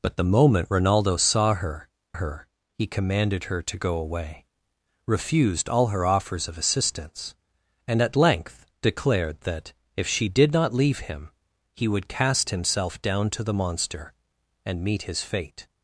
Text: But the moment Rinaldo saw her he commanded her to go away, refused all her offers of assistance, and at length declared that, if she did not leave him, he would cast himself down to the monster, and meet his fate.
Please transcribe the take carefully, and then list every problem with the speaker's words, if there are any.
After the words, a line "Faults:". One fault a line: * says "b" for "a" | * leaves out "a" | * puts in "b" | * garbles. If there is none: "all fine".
But the moment Rinaldo saw her her he commanded her to go away, refused all her offers of assistance, and at length declared that, if she did not leave him, he would cast himself down to the monster, and meet his fate.
Faults:
* puts in "her"